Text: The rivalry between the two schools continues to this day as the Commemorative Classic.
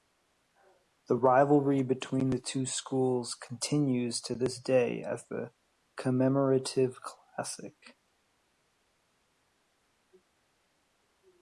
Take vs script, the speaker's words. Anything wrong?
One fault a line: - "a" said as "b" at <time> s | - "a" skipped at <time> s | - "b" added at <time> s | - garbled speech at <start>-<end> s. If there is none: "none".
none